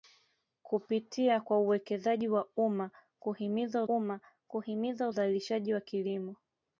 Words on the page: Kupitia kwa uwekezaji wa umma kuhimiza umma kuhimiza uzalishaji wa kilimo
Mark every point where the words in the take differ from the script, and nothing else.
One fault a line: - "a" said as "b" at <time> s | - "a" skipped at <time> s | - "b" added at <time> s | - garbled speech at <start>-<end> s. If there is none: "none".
none